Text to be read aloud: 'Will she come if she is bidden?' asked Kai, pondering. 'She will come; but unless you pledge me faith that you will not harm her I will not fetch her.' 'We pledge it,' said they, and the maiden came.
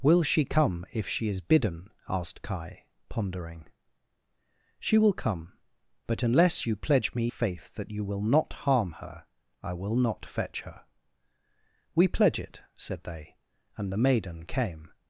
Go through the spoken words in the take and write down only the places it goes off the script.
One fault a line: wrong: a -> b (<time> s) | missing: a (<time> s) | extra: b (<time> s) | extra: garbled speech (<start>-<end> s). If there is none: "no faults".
no faults